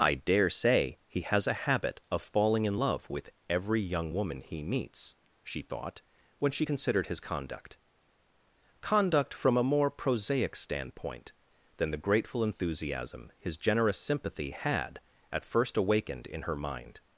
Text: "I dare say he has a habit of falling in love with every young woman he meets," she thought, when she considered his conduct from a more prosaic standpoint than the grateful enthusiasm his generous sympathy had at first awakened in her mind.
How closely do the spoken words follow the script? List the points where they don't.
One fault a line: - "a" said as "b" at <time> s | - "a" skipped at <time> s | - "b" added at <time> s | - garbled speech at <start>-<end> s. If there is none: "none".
- "conduct" added at 8.8 s